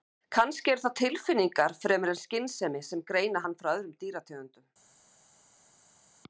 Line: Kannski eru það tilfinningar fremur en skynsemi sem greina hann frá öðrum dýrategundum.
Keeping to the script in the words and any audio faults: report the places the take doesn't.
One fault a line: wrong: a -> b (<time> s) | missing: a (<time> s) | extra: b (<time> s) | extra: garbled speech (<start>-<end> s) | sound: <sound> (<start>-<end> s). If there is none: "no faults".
no faults